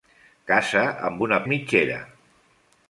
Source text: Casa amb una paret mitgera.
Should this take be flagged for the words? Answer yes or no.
yes